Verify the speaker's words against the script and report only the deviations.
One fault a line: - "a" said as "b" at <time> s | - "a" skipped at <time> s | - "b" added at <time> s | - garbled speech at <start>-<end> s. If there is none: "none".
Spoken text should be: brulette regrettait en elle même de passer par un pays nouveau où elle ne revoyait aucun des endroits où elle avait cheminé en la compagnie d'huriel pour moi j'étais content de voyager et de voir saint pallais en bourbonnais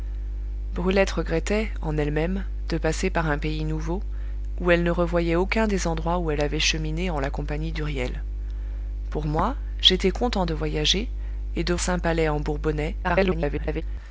- "voir" skipped at 11.8 s
- garbled speech at 13.0-13.8 s